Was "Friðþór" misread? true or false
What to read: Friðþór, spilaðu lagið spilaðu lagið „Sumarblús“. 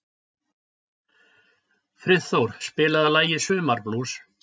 false